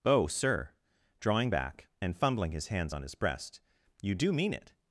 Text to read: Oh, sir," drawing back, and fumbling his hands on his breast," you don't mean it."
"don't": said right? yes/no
no